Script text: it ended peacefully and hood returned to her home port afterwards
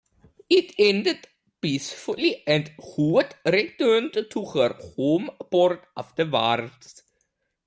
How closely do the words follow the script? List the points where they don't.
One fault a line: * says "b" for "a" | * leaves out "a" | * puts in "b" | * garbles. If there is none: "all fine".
all fine